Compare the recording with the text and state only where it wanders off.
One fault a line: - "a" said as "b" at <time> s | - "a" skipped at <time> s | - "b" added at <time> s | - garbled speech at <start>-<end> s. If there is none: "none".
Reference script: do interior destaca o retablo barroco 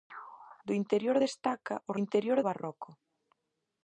- "retablo" said as "interior" at 2.0 s